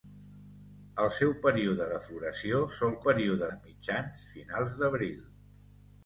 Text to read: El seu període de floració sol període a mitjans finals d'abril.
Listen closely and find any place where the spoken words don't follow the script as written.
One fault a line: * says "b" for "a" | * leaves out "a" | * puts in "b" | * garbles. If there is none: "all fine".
all fine